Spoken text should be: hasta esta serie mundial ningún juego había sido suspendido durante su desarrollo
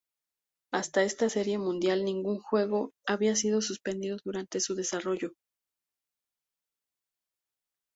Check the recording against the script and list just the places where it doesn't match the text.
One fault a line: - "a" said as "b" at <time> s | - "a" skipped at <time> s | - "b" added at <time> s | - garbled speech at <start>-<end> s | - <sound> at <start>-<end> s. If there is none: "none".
none